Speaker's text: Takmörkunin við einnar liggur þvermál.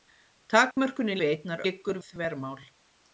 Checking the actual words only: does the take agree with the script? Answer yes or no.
yes